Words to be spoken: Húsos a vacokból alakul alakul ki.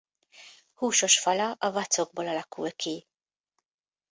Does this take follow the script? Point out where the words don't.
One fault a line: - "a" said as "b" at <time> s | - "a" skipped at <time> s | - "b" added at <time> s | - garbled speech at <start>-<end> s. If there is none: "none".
- "fala" added at 1.2 s
- "alakul" skipped at 2.7 s